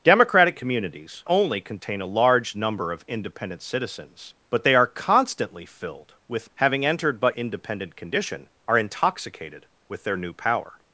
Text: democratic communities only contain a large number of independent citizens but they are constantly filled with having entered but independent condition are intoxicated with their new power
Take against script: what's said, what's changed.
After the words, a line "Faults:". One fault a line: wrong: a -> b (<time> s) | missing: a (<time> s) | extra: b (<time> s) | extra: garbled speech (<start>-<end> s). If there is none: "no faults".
democratic communities only contain a large number of independent citizens but they are constantly filled with having entered but independent condition are intoxicated with their new power
Faults:
no faults